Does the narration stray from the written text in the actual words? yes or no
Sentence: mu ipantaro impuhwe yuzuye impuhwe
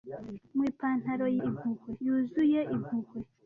no